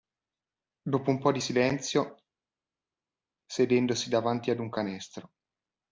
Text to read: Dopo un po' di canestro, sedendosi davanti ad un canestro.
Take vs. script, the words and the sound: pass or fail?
fail